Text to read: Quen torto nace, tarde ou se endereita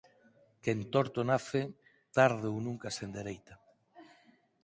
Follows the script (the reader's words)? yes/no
no